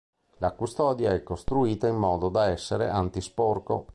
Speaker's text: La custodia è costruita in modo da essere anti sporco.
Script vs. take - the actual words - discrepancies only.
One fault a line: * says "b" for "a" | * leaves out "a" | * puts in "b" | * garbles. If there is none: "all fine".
all fine